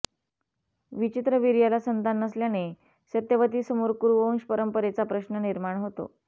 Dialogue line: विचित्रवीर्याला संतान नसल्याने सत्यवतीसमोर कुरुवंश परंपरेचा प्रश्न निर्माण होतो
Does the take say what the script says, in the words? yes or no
yes